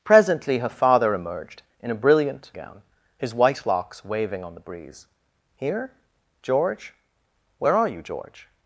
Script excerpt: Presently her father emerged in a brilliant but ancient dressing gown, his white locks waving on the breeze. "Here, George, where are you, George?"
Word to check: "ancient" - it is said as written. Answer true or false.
false